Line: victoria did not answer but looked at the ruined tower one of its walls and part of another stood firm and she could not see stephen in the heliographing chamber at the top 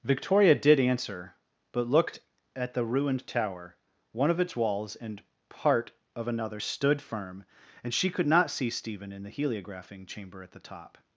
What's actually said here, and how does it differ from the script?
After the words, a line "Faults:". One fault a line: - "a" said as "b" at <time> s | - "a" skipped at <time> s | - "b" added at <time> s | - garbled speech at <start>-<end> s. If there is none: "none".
victoria did answer but looked at the ruined tower one of its walls and part of another stood firm and she could not see stephen in the heliographing chamber at the top
Faults:
- "not" skipped at 0.8 s